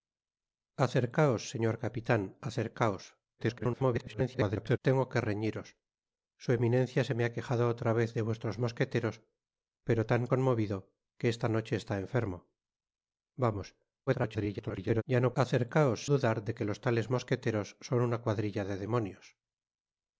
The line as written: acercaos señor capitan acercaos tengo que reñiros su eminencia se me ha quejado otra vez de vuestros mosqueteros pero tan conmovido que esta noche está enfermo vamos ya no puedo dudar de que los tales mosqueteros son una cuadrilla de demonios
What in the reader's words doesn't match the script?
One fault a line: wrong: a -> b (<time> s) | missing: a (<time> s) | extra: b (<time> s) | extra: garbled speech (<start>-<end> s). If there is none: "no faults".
extra: garbled speech (3.4-4.8 s)
extra: garbled speech (14.1-15.0 s)
wrong: puedo -> acercaos (15.4 s)